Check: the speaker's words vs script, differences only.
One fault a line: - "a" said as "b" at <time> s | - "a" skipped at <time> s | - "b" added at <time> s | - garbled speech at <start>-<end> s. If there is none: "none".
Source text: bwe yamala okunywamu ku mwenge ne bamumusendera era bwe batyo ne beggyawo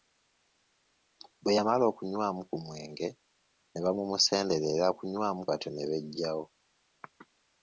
- "bwe" said as "okunywamu" at 4.9 s